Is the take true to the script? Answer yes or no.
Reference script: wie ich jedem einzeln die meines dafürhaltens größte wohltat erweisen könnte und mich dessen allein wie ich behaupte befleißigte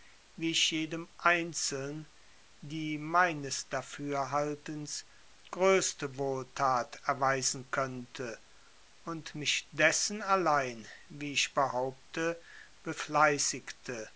yes